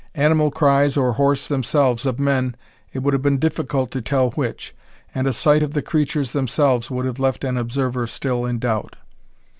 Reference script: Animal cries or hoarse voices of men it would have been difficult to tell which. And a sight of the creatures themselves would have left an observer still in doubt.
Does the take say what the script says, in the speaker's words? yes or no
no